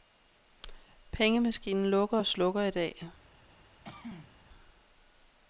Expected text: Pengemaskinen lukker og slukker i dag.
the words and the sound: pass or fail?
fail